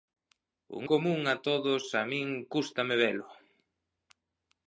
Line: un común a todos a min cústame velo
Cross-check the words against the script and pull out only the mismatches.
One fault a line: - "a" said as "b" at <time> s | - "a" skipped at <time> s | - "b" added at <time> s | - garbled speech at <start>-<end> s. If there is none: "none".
none